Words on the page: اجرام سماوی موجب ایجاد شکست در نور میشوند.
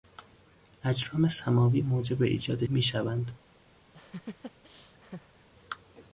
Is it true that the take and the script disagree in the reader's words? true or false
true